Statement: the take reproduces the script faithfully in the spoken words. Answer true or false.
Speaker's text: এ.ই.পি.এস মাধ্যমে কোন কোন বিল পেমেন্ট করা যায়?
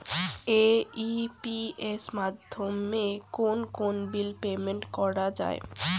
true